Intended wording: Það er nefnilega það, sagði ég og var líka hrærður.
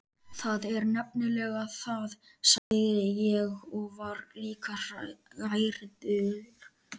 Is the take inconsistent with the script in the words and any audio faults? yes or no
yes